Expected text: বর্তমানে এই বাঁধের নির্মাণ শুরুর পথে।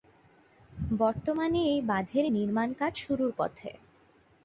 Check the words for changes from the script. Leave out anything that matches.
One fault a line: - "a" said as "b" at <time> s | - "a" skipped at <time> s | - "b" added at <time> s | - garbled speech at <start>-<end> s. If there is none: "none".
- "কাজ" added at 2.8 s